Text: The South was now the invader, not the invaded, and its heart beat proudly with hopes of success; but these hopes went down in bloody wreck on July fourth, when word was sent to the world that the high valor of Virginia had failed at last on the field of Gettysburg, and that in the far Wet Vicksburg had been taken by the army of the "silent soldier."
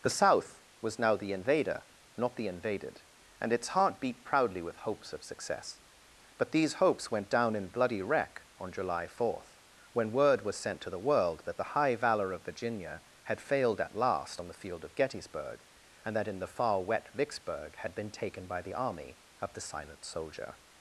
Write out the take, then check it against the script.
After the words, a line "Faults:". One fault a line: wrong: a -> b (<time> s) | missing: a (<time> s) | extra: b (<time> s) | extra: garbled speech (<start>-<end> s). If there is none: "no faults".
The South was now the invader, not the invaded, and its heart beat proudly with hopes of success; but these hopes went down in bloody wreck on July fourth, when word was sent to the world that the high valor of Virginia had failed at last on the field of Gettysburg, and that in the far Wet Vicksburg had been taken by the army of the "silent soldier."
Faults:
no faults